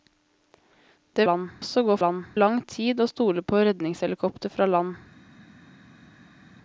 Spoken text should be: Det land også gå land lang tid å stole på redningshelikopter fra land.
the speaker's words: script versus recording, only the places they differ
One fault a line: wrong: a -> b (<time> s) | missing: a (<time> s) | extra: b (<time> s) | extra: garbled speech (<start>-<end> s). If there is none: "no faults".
no faults